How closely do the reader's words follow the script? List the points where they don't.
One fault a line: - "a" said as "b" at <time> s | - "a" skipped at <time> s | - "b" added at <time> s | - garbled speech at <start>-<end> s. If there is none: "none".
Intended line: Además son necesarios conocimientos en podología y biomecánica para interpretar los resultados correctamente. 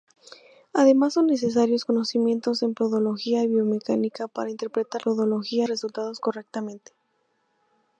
- "los" said as "podología" at 5.0 s